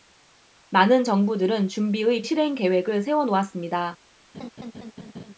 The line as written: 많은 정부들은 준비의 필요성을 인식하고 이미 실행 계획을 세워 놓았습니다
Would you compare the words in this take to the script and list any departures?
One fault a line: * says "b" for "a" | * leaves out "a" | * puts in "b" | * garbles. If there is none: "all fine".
* leaves out "필요성을 인식하고 이미"